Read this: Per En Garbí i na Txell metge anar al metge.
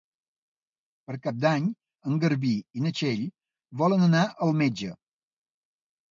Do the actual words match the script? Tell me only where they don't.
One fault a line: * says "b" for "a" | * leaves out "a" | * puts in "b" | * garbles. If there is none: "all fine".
* puts in "Cap d'Any"
* says "volen" for "metge"